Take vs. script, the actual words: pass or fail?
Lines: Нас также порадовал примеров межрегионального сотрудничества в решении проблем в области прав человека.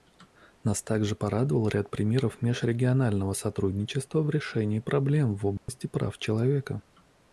fail